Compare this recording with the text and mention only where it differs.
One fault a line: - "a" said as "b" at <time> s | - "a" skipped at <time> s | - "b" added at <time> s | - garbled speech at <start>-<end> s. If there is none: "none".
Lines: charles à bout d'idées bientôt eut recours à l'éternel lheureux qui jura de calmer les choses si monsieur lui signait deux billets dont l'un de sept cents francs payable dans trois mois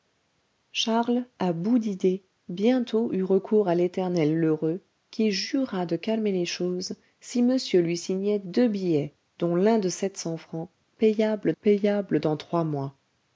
- "payable" added at 11.6 s